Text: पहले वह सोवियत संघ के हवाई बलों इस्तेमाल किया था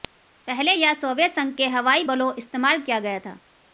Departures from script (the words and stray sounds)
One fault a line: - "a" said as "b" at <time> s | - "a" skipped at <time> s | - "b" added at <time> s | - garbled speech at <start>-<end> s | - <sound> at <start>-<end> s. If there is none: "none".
- "वह" said as "यह" at 0.7 s
- "गया" added at 3.0 s